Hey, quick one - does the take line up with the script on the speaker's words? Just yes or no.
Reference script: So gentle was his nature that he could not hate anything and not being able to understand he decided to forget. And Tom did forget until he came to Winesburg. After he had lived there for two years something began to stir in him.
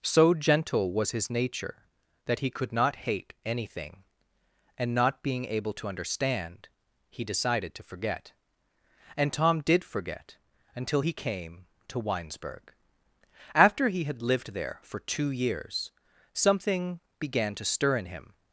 yes